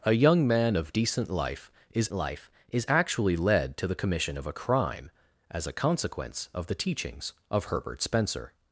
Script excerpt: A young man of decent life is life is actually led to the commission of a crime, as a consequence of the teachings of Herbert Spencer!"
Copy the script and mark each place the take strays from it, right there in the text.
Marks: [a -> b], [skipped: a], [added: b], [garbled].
A young man of decent life is life is actually led to the commission of a crime, as a consequence of the teachings of Herbert Spencer!"